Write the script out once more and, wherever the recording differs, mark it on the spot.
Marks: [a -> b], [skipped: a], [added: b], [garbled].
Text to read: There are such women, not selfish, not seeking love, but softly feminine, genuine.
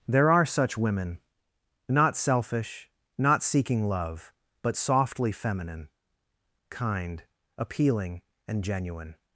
There are such women, not selfish, not seeking love, but softly feminine, [added: kind appealing and] genuine.